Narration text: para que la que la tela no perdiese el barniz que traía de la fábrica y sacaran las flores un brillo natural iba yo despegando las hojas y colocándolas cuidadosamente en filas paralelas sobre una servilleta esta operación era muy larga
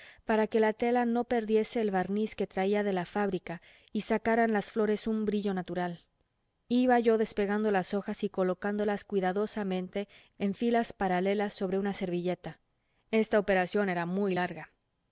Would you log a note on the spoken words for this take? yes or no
yes